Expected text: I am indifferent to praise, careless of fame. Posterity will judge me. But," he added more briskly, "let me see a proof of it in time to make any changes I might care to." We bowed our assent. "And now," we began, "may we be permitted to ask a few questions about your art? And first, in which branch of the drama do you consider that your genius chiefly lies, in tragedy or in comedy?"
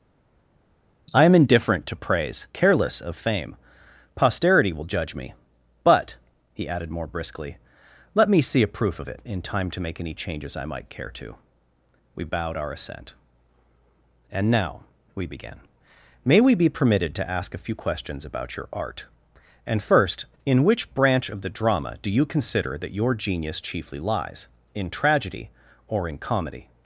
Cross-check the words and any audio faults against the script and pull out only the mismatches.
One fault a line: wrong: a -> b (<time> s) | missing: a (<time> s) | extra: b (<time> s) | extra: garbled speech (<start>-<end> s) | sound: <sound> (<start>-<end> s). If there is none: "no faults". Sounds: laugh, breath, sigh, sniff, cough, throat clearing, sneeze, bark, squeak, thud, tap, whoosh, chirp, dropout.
no faults